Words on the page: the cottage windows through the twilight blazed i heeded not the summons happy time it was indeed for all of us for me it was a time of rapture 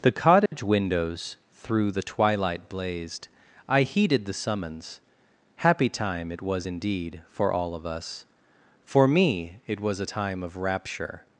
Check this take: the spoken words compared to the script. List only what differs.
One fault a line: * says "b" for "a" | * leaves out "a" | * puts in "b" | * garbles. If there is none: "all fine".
* leaves out "not"